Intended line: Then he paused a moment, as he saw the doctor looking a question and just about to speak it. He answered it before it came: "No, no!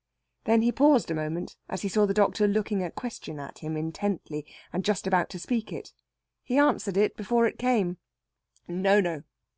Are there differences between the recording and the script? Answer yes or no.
yes